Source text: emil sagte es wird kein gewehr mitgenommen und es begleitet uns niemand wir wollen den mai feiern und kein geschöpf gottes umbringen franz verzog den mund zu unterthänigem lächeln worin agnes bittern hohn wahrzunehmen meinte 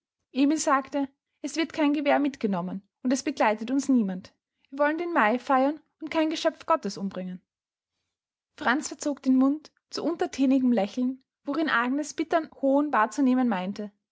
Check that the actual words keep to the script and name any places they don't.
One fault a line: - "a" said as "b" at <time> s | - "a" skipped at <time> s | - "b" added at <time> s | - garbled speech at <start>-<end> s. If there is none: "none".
none